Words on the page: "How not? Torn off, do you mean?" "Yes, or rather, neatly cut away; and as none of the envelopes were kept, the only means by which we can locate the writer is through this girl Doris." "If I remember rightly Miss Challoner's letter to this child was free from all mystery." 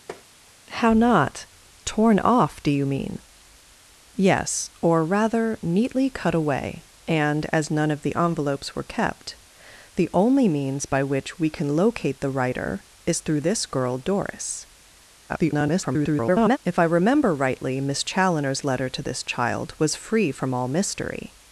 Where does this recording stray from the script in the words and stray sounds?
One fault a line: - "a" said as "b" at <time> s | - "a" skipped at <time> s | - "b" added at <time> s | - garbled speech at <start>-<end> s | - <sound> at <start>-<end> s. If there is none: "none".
- tap at 0.1-0.3 s
- garbled speech at 15.3-16.6 s